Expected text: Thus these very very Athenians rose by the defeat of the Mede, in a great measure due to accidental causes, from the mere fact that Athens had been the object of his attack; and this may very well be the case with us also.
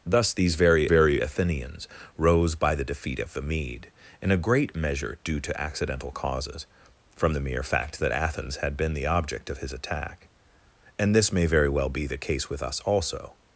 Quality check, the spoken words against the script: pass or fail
pass